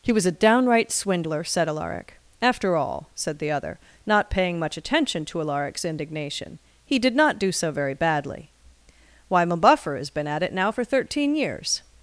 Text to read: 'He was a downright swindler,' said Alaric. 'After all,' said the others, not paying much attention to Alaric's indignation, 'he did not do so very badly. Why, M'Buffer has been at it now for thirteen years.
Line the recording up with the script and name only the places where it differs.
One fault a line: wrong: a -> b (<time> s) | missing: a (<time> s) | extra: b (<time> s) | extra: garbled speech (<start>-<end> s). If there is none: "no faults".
wrong: others -> other (3.5 s)